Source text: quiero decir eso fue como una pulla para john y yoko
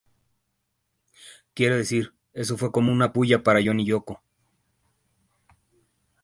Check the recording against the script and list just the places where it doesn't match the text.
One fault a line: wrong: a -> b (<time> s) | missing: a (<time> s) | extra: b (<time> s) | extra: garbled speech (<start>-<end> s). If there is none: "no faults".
no faults